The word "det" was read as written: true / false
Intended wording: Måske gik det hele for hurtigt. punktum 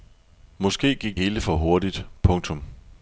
false